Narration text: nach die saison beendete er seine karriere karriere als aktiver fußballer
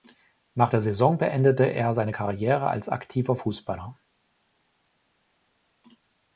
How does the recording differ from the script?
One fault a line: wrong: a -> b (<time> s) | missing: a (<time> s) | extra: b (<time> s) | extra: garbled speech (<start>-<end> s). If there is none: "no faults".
wrong: die -> der (0.7 s)
missing: karriere (2.7 s)